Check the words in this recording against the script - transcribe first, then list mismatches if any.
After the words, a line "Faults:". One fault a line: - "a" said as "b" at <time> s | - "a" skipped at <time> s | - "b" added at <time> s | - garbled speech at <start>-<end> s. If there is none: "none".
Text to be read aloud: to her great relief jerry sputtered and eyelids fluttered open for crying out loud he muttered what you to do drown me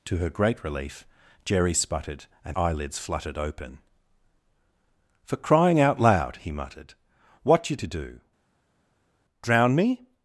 to her great relief jerry sputtered and eyelids fluttered open for crying out loud he muttered what you to do drown me
Faults:
none